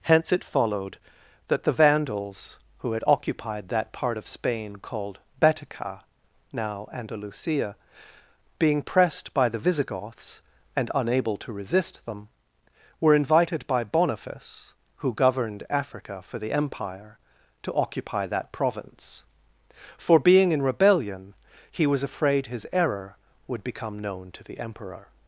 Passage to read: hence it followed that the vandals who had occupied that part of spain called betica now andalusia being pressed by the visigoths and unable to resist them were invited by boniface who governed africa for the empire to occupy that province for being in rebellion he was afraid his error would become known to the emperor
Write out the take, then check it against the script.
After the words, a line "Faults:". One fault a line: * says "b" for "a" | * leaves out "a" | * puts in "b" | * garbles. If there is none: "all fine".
hence it followed that the vandals who had occupied that part of spain called betica now andalusia being pressed by the visigoths and unable to resist them were invited by boniface who governed africa for the empire to occupy that province for being in rebellion he was afraid his error would become known to the emperor
Faults:
all fine